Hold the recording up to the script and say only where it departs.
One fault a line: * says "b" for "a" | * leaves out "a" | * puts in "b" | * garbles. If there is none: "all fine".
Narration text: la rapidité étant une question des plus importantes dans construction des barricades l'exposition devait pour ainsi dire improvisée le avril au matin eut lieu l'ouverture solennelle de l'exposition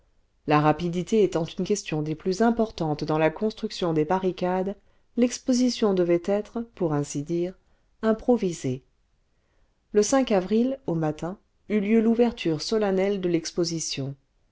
* puts in "la"
* puts in "être"